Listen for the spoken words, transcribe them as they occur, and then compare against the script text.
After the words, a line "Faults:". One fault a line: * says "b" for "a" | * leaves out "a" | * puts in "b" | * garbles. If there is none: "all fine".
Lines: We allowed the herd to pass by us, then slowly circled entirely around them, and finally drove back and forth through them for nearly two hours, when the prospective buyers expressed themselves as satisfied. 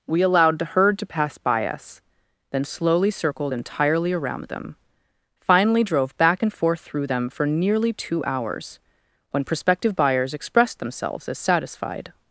We allowed the herd to pass by us, then slowly circled entirely around them, finally drove back and forth through them for nearly two hours, when prospective buyers expressed themselves as satisfied.
Faults:
* leaves out "and"
* leaves out "the"